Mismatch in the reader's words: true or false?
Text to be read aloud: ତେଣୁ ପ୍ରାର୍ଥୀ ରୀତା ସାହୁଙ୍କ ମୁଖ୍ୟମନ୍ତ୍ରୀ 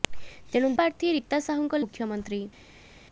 false